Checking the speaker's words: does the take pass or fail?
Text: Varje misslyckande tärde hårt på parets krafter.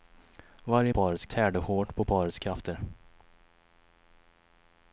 fail